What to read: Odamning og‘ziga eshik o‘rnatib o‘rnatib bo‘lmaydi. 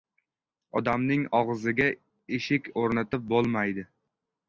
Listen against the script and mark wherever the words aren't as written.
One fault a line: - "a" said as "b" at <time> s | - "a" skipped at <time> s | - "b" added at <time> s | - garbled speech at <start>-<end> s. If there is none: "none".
- "o‘rnatib" skipped at 3.3 s